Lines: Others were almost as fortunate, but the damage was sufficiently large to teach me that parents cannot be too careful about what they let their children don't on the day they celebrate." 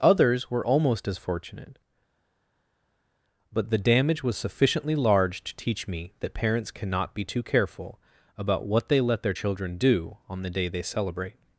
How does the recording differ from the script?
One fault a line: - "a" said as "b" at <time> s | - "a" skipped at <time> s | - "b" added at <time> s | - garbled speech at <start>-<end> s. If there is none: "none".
- "don't" said as "do" at 9.8 s